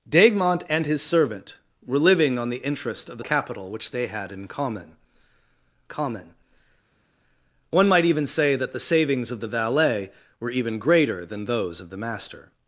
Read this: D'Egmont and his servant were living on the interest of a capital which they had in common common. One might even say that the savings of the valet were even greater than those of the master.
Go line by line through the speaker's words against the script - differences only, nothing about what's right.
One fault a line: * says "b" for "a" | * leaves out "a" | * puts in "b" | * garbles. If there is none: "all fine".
all fine